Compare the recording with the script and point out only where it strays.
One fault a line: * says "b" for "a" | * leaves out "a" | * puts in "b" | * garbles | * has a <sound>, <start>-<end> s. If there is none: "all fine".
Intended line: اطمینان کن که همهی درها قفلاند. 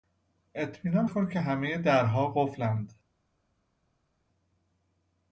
all fine